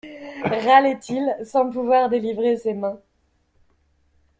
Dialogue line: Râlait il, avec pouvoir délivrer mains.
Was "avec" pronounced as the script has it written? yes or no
no